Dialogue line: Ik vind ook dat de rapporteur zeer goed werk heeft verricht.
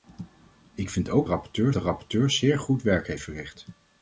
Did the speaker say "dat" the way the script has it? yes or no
no